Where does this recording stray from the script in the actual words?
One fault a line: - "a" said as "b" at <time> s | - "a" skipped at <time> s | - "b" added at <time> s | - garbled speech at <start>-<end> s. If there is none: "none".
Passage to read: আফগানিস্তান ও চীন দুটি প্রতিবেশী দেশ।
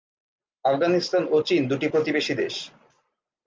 none